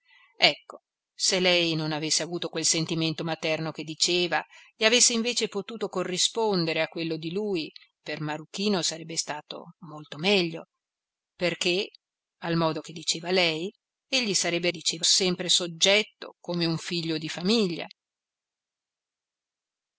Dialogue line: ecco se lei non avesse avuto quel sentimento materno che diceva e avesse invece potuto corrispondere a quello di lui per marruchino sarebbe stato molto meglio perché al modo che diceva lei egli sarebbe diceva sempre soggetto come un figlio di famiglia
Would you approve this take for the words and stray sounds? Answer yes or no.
yes